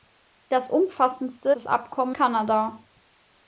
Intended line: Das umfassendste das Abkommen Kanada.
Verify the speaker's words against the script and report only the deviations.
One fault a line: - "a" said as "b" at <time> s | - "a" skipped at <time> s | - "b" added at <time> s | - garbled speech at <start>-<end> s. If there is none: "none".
none